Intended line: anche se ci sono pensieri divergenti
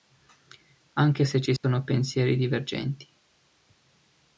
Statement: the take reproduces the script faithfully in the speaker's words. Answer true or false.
true